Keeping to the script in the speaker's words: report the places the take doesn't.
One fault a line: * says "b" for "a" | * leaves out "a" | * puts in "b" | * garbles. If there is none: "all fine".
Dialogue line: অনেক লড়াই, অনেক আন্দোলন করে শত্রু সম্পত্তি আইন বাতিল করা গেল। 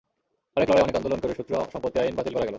all fine